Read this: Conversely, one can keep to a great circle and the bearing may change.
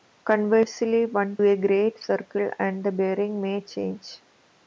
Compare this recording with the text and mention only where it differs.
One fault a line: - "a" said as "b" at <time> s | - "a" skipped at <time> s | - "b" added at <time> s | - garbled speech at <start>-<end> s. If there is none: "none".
- "can keep to" skipped at 1.4 s